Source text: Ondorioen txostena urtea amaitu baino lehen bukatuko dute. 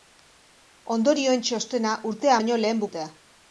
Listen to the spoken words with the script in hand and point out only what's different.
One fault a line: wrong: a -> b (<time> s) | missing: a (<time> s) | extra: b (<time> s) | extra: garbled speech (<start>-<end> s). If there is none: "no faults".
missing: amaitu (2.4 s)
missing: bukatuko (2.8 s)